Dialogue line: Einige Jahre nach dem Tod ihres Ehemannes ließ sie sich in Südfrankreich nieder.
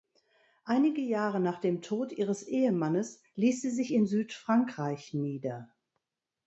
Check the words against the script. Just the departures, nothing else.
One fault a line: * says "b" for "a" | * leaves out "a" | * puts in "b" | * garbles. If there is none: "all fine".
all fine